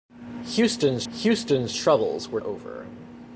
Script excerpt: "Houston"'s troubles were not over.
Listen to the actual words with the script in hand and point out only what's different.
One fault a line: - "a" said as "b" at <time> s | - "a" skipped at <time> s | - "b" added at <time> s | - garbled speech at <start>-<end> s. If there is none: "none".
- "houston"'s" added at 1.1 s
- "not" skipped at 2.4 s